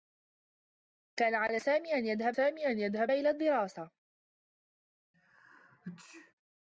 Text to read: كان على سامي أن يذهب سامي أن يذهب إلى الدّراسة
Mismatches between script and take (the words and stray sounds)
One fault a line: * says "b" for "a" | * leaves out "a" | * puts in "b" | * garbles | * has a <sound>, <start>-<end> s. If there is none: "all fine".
* has a sneeze, 5.1-6.3 s